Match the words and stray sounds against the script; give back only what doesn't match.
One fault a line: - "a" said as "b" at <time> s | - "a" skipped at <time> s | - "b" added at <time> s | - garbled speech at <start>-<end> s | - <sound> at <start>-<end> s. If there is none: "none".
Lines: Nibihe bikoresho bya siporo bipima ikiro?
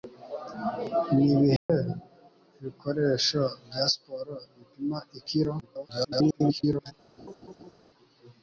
- dropout at 1.6-1.7 s
- garbled speech at 5.6-6.9 s
- laugh at 7.2-7.7 s